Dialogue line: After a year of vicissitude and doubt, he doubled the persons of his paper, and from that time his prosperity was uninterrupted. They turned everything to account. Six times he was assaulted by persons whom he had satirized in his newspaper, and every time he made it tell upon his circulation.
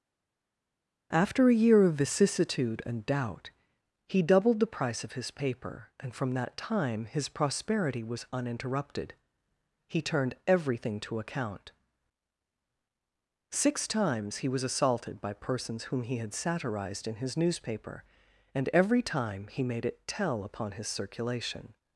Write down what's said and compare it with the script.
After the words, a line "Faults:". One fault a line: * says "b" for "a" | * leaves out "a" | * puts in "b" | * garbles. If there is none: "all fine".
After a year of vicissitude and doubt, he doubled the price of his paper, and from that time his prosperity was uninterrupted. He turned everything to account. Six times he was assaulted by persons whom he had satirized in his newspaper, and every time he made it tell upon his circulation.
Faults:
* says "price" for "persons"
* says "He" for "They"